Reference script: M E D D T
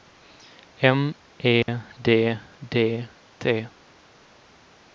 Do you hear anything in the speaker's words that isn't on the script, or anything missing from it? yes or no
no